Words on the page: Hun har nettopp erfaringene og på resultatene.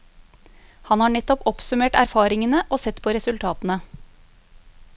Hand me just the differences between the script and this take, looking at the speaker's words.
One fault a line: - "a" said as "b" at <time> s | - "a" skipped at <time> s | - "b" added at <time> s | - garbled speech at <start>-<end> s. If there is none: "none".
- "Hun" said as "Han" at 0.9 s
- "oppsummert" added at 1.5 s
- "sett" added at 2.8 s